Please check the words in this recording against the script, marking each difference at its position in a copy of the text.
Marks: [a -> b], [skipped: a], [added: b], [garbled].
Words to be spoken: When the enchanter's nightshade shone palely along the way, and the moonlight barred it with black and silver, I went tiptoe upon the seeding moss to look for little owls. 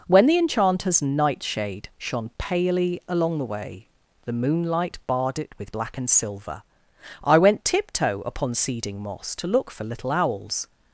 When the enchanter's nightshade shone palely along the way, [skipped: and] the moonlight barred it with black and silver, I went tiptoe upon [skipped: the] seeding moss to look for little owls.